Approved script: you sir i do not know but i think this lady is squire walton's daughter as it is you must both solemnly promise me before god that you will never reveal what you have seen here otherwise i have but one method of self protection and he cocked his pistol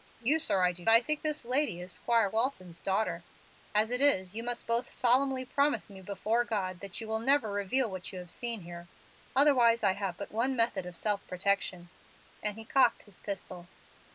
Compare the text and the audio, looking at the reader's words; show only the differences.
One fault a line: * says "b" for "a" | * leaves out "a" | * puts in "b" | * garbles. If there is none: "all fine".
* leaves out "not know but"